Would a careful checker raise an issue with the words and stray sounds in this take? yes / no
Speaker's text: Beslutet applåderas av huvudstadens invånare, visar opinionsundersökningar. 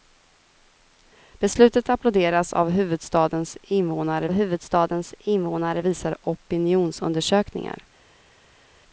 yes